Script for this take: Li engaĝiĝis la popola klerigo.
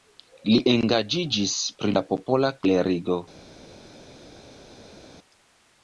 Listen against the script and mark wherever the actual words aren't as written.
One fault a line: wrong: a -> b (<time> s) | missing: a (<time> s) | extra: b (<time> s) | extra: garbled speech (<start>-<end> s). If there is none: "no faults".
extra: pri (1.8 s)